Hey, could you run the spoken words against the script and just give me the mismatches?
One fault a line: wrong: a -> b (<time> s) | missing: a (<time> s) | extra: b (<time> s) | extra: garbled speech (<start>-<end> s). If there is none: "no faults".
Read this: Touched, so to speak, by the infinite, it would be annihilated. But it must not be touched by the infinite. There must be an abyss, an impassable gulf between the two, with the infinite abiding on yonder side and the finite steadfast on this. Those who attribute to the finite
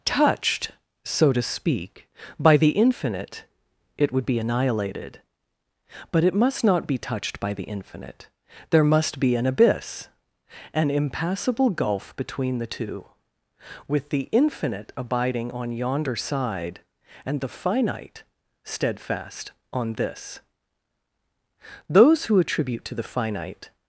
no faults